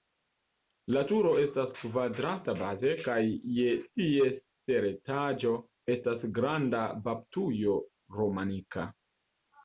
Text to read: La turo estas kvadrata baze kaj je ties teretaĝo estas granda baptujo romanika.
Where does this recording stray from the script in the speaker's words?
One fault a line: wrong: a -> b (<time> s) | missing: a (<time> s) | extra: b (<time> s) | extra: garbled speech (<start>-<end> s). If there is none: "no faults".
no faults